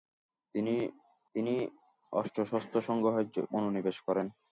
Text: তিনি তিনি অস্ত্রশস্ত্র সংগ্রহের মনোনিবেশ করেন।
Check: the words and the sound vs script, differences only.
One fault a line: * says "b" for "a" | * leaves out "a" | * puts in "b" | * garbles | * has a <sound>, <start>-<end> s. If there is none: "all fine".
all fine